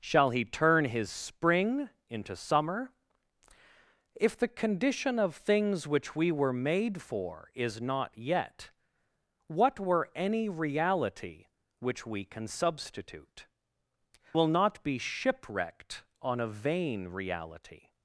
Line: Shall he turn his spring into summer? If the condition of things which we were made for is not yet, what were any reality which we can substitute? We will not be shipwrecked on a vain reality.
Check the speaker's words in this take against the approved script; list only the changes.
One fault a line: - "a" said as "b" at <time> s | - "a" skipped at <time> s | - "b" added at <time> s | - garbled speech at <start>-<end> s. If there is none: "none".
- "We" skipped at 13.4 s